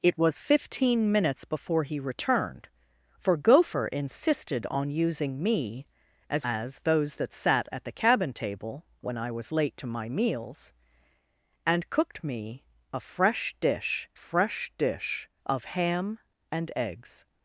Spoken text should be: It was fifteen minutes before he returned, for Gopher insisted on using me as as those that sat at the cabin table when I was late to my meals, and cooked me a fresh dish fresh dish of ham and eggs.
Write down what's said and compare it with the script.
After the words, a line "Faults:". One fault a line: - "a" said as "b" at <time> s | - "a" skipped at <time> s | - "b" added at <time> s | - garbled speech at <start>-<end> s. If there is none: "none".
It was fifteen minutes before he returned, for Gopher insisted on using me as as those that sat at the cabin table when I was late to my meals, and cooked me a fresh dish fresh dish of ham and eggs.
Faults:
none